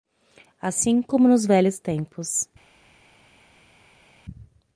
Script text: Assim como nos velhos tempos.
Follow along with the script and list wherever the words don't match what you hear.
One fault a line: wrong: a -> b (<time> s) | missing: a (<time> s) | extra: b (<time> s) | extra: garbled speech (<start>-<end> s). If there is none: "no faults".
no faults